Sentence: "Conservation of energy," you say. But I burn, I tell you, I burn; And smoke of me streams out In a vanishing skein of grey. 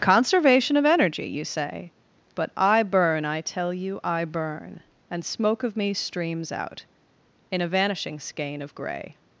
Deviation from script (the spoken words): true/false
false